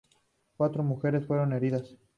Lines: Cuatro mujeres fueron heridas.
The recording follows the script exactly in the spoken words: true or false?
true